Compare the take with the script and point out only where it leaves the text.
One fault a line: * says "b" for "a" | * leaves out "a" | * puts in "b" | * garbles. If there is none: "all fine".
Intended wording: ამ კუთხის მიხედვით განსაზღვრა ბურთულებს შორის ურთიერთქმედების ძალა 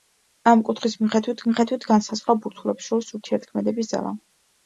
* puts in "მიხედვით"